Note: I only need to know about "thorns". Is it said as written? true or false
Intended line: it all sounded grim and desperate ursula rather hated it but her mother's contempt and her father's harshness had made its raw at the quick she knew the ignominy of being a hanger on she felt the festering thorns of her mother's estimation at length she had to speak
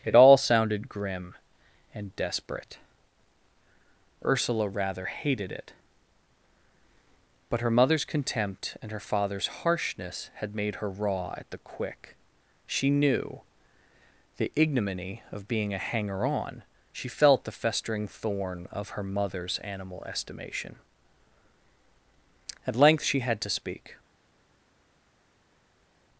false